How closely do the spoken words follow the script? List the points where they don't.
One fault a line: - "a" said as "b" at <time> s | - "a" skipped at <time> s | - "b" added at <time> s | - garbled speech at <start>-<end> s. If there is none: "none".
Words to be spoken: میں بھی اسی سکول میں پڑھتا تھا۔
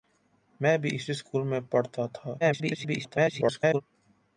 - garbled speech at 2.4-3.8 s